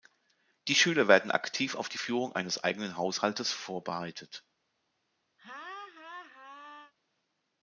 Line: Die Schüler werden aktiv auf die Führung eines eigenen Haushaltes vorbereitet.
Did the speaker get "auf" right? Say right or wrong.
right